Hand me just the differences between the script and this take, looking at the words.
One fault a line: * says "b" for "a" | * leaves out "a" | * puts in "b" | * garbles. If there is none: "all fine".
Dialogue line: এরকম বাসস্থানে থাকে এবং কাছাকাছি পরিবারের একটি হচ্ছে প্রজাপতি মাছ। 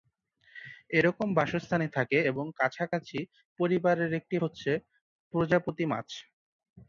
all fine